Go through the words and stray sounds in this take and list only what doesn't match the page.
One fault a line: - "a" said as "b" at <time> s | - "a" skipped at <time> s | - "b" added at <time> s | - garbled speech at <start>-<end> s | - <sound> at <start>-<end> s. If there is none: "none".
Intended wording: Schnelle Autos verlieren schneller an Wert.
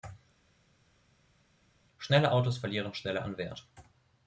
none